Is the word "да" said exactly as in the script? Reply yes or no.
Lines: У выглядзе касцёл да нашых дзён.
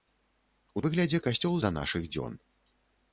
yes